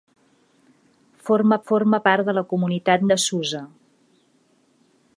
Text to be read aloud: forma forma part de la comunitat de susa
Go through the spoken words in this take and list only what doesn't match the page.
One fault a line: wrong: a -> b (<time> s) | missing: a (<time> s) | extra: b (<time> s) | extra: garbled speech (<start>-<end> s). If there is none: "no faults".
no faults